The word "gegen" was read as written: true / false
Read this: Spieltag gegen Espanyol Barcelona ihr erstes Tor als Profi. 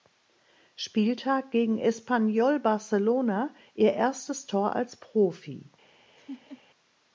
true